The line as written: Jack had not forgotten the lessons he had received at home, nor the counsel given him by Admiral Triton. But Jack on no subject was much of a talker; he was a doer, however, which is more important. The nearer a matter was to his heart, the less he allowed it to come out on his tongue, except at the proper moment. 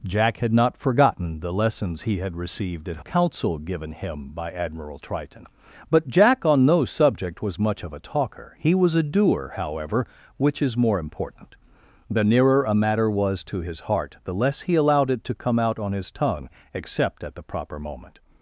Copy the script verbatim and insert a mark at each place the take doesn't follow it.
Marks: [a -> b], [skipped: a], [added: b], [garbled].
Jack had not forgotten the lessons he had received at [skipped: home, nor the] counsel given him by Admiral Triton. But Jack on no subject was much of a talker; he was a doer, however, which is more important. The nearer a matter was to his heart, the less he allowed it to come out on his tongue, except at the proper moment.